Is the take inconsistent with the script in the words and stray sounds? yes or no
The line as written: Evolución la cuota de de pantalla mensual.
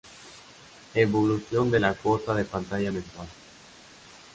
yes